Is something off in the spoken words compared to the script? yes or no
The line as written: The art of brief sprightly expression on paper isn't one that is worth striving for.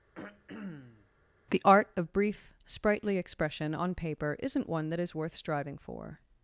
no